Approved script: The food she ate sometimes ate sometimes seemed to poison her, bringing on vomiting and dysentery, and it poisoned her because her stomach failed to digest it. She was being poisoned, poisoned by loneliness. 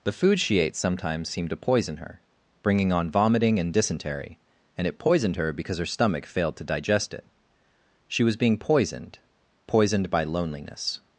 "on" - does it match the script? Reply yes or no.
yes